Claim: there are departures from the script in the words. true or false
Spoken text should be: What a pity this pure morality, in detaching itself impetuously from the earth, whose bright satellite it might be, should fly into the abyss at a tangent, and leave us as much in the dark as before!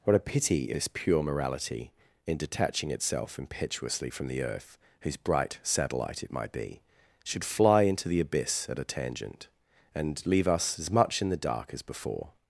false